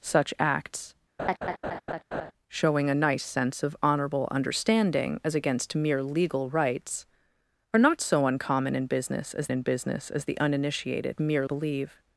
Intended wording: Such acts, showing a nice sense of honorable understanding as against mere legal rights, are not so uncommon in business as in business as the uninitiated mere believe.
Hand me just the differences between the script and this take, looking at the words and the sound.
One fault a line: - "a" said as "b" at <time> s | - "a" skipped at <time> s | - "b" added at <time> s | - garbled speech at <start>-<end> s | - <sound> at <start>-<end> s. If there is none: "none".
- laugh at 1.2-2.3 s